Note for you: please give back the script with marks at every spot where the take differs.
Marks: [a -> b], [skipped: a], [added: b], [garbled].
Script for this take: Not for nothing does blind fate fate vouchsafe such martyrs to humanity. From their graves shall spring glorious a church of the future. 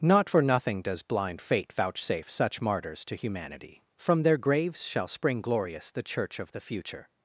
Not for nothing does blind fate [skipped: fate] vouchsafe such martyrs to humanity. From their graves shall spring glorious [a -> the] church of the future.